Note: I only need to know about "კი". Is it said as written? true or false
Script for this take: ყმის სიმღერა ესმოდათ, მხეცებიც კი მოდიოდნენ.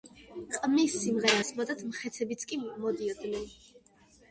true